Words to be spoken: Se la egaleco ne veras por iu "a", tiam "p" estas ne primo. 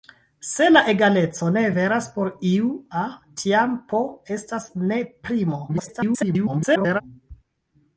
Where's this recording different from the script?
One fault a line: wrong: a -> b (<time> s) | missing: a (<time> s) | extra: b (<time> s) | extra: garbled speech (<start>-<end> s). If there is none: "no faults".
extra: garbled speech (5.7-7.0 s)